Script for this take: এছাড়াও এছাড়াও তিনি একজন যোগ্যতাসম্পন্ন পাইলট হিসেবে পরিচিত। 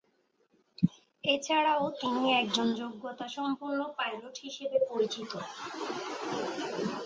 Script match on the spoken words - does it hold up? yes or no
no